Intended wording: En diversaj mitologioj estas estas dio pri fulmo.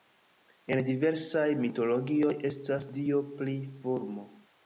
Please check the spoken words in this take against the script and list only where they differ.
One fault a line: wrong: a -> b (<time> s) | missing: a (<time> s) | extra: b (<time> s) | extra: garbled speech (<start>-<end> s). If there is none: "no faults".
missing: estas (2.9 s)